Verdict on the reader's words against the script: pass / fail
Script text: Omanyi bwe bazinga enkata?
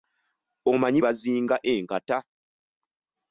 fail